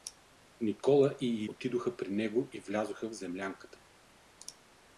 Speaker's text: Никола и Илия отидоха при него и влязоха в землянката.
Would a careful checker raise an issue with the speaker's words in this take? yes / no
yes